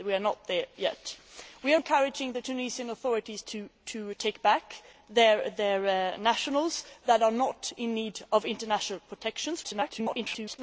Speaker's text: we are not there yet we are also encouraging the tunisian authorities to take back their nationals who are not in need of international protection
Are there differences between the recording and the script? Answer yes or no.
yes